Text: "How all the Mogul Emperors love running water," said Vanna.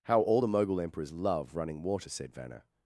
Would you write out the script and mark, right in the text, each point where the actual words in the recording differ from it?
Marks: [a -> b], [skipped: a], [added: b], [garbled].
"How all the Mogul Emperors love running water," said Vanna.